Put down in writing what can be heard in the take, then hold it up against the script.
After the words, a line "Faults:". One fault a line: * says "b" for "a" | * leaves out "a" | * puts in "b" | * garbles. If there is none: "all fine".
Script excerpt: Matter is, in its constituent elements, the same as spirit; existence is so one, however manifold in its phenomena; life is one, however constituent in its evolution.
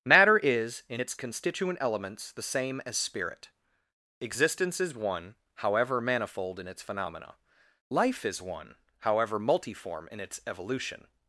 Matter is, in its constituent elements, the same as spirit; existence is one, however manifold in its phenomena; life is one, however multiform in its evolution.
Faults:
* leaves out "so"
* says "multiform" for "constituent"